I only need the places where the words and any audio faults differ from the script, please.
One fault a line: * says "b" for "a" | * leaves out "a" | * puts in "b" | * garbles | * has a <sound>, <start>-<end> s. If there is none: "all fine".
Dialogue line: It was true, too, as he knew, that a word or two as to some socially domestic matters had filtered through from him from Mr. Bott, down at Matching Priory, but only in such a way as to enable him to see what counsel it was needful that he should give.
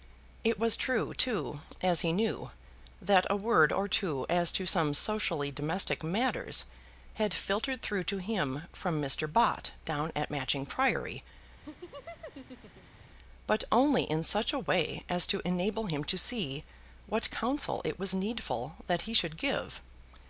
* says "to" for "from"
* has a laugh, 11.6-13.0 s